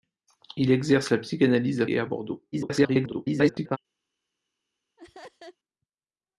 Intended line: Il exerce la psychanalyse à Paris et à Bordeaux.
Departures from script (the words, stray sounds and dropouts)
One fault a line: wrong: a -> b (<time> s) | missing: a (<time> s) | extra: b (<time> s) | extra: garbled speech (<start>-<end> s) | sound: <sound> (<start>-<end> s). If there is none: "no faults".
missing: Paris (1.9 s)
extra: garbled speech (2.5-3.8 s)
sound: laugh (5.0-5.6 s)